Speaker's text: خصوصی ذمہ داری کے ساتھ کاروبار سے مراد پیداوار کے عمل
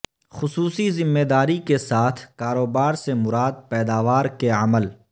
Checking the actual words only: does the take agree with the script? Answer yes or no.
yes